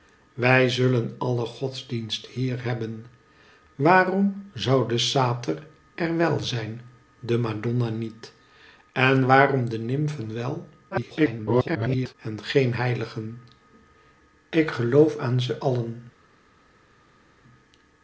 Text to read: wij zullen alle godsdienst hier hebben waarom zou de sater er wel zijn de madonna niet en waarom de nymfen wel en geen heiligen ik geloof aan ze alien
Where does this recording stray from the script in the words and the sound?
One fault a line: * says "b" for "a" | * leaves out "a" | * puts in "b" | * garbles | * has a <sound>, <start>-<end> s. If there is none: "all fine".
* garbles